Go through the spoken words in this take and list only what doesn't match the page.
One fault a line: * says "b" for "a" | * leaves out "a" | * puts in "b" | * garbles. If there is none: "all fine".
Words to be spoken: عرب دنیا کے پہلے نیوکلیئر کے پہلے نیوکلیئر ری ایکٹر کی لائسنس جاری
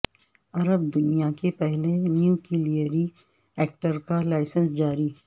* leaves out "کے پہلے نیوکلیئر"
* says "کا" for "کی"